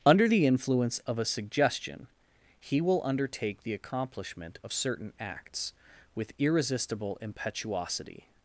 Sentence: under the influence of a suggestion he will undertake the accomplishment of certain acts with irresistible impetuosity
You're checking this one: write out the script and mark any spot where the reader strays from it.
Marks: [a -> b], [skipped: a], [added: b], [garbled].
under the influence of a suggestion he will undertake the accomplishment of certain acts with irresistible impetuosity